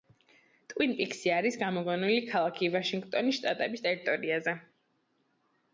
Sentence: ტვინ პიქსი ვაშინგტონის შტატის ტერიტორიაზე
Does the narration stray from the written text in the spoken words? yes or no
yes